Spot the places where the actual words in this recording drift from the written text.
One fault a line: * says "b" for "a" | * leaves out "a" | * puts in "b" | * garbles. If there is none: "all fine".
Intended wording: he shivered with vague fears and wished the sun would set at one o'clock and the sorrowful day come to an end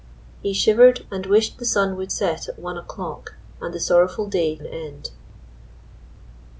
* leaves out "with vague fears"
* leaves out "come to"